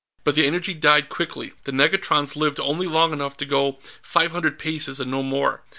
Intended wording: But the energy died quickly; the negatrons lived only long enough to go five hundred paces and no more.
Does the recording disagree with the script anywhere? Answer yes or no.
no